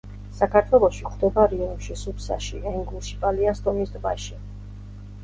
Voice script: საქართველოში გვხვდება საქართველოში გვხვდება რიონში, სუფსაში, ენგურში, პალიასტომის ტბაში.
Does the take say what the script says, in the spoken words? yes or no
no